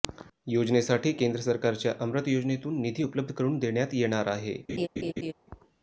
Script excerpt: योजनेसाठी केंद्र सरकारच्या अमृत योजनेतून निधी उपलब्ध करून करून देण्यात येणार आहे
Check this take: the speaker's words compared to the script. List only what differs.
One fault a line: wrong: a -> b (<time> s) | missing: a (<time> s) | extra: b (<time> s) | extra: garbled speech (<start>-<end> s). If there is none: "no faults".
missing: करून (3.6 s)